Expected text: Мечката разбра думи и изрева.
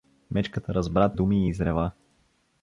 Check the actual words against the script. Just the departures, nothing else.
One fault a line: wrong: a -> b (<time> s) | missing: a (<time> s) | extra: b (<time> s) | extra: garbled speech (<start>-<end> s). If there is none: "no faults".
no faults